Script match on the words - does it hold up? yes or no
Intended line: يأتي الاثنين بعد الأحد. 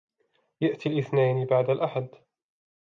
yes